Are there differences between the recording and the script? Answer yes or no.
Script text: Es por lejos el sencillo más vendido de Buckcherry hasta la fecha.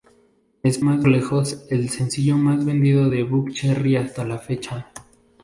yes